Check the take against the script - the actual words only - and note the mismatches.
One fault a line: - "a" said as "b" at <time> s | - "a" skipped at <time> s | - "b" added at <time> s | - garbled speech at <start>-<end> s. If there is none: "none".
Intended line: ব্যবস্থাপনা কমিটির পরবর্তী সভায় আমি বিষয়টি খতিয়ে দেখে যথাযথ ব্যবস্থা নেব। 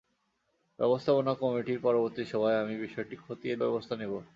- "দেখে যথাযথ" skipped at 3.5 s